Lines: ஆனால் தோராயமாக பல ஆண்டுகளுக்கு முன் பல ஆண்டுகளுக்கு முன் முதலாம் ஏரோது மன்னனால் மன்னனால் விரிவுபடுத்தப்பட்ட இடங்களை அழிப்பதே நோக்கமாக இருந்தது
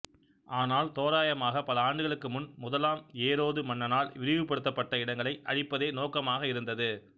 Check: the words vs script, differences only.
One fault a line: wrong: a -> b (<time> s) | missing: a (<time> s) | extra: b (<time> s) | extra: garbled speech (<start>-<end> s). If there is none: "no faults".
missing: பல ஆண்டுகளுக்கு முன் (2.5 s)
missing: மன்னனால் (4.1 s)